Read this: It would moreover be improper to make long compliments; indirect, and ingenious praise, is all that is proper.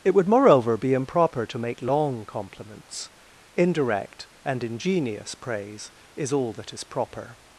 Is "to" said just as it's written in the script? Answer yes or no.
yes